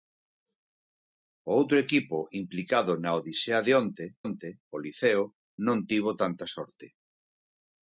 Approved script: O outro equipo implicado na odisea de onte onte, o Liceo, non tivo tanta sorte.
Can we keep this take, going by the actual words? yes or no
yes